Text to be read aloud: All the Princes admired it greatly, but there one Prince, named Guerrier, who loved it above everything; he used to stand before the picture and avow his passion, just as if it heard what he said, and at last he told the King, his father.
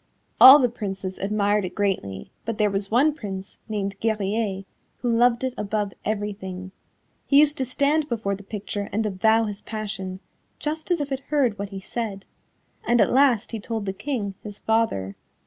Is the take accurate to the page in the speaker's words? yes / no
no